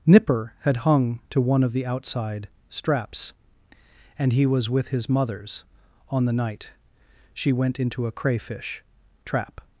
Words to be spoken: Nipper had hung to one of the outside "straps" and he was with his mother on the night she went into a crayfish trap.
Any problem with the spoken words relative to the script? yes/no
yes